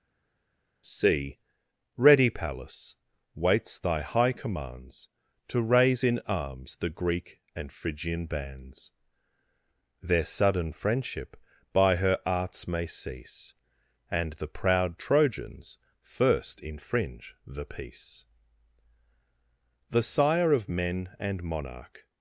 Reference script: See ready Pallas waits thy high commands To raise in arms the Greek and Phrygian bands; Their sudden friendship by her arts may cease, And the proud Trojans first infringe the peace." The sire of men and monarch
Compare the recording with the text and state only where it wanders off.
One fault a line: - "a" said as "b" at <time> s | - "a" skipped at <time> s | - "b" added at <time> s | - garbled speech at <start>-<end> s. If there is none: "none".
none